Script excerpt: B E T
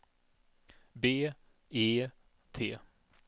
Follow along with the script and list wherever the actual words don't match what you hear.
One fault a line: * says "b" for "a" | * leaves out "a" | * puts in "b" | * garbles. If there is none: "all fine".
all fine